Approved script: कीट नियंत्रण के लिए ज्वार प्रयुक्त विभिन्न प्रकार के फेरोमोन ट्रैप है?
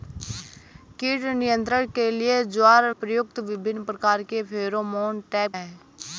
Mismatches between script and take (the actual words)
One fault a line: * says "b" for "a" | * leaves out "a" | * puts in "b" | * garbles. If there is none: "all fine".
all fine